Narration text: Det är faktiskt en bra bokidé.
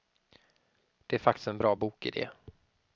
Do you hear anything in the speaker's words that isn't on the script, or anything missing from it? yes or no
no